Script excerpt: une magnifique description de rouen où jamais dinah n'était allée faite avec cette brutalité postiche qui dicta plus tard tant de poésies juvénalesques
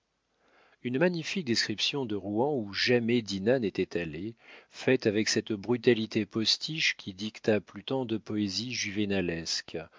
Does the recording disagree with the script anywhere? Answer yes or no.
yes